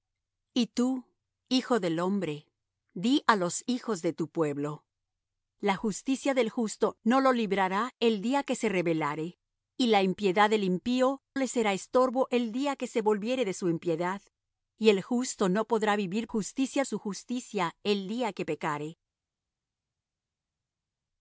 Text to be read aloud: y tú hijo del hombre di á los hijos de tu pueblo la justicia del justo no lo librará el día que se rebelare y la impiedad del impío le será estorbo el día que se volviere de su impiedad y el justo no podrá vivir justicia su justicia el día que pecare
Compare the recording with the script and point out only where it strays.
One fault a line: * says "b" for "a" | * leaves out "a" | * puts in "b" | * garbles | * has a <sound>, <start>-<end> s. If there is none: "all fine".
all fine